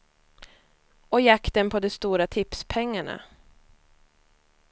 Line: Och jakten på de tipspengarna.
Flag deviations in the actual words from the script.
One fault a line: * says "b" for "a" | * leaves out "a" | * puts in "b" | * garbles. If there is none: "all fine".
* puts in "stora"